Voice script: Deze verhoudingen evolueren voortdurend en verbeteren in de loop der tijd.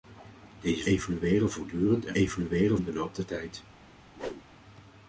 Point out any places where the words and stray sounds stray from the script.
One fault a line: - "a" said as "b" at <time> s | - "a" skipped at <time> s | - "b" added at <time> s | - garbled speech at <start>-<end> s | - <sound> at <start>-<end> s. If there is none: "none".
- "verhoudingen" skipped at 0.9 s
- "verbeteren" said as "evolueren" at 2.1 s
- whoosh at 4.2-4.4 s